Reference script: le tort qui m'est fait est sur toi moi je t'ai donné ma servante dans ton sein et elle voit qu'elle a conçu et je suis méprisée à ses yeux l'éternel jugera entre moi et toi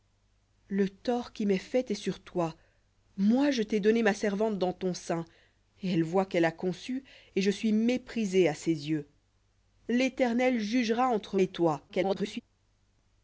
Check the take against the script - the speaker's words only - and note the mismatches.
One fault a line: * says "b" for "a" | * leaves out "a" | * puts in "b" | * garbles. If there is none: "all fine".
* leaves out "moi"
* garbles